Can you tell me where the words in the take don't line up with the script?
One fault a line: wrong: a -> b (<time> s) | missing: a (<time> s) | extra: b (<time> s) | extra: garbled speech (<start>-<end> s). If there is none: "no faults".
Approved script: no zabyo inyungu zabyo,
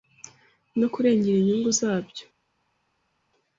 wrong: zabyo -> kurengera (0.9 s)